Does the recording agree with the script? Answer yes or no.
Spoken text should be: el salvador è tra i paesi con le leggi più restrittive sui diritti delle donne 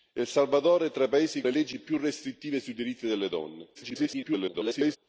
no